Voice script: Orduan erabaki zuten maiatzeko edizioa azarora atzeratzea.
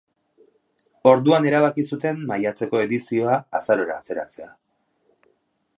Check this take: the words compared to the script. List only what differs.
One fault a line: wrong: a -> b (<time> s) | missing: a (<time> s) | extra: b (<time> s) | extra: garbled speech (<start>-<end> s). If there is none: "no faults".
no faults